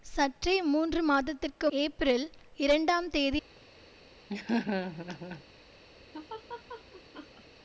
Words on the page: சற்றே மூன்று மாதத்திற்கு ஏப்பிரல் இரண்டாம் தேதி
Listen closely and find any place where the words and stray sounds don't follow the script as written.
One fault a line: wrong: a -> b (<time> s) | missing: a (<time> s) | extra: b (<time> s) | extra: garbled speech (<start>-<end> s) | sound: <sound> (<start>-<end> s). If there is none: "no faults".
sound: laugh (4.3-5.4 s)
sound: laugh (6.1-7.4 s)